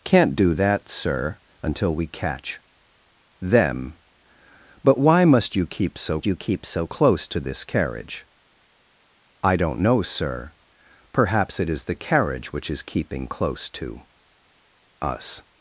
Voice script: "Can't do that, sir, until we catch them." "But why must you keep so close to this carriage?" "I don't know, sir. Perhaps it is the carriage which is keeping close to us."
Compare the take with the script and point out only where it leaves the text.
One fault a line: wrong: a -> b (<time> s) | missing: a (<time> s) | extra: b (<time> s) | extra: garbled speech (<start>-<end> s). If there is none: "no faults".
extra: you keep so (6.3 s)